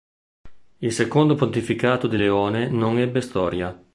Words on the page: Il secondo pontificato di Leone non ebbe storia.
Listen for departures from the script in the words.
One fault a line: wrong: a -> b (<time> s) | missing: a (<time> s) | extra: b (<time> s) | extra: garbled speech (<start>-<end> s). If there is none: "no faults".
no faults